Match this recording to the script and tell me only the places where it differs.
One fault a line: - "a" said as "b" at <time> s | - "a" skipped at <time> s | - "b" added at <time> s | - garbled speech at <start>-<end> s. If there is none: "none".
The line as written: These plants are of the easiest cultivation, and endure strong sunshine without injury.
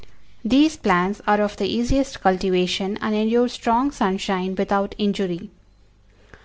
none